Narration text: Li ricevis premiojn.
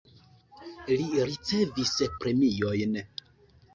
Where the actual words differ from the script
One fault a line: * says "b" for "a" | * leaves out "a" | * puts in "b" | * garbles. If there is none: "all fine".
all fine